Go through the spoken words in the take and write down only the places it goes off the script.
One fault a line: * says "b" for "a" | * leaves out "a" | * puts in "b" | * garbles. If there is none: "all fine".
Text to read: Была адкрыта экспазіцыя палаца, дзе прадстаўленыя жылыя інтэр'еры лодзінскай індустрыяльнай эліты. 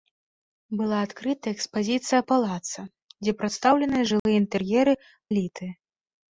* leaves out "лодзінскай індустрыяльнай"